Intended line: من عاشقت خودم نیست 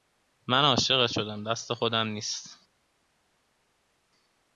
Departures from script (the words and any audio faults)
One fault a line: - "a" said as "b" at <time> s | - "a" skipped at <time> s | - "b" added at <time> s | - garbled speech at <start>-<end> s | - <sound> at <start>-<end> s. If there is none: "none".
- "شدم دست" added at 1.1 s